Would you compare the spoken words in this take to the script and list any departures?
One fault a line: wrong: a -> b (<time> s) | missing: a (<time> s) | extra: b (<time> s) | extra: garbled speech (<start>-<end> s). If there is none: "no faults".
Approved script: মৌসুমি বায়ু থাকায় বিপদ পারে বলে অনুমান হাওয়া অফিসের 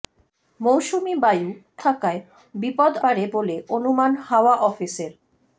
no faults